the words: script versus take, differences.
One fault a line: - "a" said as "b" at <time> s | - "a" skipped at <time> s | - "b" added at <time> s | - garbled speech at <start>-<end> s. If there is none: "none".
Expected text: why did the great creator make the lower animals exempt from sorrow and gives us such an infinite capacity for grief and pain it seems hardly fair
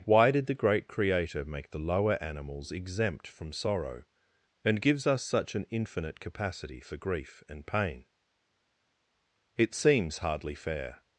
none